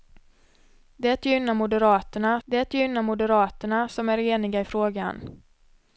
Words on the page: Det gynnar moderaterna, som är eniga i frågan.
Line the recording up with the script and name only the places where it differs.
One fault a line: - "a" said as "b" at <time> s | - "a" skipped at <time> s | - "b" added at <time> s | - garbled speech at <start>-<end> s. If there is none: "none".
- "det gynnar moderaterna" added at 2.4 s